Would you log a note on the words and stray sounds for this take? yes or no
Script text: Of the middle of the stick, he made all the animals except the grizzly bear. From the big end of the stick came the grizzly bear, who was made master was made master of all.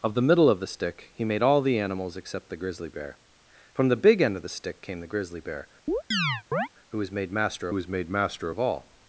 yes